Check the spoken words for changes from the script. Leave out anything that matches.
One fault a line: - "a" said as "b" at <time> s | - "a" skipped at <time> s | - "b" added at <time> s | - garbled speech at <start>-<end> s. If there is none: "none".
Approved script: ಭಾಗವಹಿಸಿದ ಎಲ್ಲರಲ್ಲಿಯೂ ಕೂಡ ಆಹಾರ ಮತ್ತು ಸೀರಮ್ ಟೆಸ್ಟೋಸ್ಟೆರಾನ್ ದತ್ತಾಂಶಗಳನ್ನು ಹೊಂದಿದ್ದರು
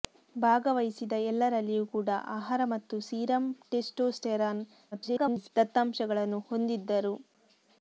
- garbled speech at 4.9-5.5 s